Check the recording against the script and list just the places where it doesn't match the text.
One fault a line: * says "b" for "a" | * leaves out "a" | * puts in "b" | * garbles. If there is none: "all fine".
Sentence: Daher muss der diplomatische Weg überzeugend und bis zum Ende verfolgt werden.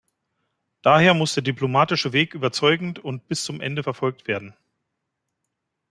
all fine